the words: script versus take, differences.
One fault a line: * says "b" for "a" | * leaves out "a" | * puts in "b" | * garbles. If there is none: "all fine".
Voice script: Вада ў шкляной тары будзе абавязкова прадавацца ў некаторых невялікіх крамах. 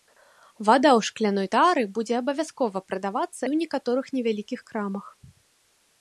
all fine